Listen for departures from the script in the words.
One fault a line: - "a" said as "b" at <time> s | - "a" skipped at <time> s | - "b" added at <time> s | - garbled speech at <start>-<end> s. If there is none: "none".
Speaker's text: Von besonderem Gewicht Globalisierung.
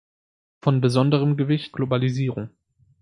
none